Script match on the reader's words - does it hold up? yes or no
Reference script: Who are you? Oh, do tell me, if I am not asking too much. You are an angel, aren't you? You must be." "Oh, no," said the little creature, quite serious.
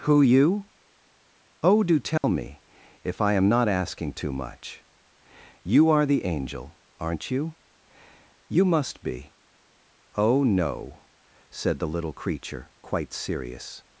no